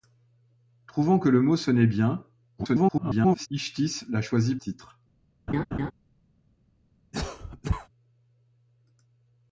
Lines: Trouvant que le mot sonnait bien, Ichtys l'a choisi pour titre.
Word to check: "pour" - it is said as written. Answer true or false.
false